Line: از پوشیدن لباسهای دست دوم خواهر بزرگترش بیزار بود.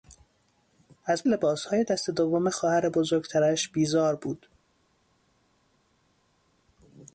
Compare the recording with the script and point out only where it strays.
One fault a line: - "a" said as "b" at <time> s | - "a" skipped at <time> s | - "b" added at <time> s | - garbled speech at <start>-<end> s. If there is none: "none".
- "پوشیدن" skipped at 1.2 s